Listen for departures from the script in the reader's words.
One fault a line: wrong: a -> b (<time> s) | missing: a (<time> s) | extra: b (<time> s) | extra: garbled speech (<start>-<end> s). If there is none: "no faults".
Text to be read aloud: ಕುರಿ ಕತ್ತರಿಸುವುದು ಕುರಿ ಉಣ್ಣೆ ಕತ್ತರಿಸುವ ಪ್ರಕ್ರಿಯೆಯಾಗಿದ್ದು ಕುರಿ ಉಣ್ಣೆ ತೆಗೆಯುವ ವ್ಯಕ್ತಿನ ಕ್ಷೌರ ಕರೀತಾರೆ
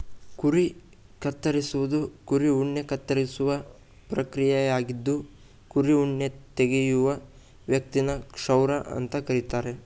extra: ಅಂತ (8.9 s)